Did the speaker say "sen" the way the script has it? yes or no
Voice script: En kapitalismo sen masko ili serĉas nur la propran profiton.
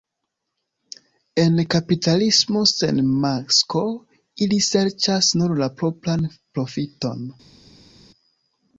yes